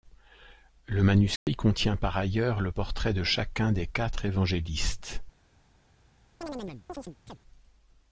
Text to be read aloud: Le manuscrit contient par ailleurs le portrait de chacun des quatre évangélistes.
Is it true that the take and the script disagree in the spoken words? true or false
false